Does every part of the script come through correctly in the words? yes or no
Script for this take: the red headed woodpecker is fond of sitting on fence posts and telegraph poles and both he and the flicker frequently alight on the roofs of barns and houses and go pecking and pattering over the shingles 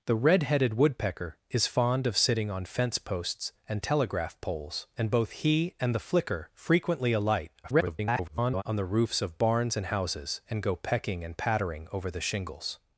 no